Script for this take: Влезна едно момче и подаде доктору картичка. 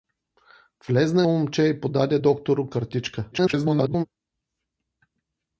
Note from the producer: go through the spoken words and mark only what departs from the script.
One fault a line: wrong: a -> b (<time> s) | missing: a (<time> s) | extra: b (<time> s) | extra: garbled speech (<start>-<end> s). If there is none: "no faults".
missing: едно (1.3 s)
extra: garbled speech (3.3-4.1 s)